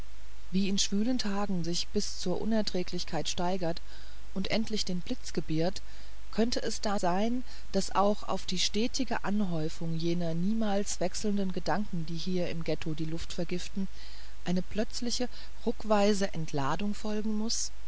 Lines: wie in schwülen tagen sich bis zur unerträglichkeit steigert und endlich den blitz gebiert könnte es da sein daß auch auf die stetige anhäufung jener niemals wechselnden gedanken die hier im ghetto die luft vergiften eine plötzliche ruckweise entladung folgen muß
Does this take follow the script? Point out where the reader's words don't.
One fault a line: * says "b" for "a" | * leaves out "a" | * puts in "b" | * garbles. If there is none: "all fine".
all fine